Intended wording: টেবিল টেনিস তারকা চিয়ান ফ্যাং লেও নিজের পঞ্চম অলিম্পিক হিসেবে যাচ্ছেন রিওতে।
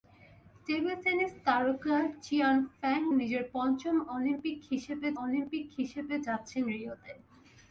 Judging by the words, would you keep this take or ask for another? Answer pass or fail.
fail